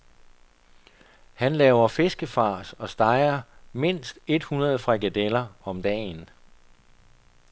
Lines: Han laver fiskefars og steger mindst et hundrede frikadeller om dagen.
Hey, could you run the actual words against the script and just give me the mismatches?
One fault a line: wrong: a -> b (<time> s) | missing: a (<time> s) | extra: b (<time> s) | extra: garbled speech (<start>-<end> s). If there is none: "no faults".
no faults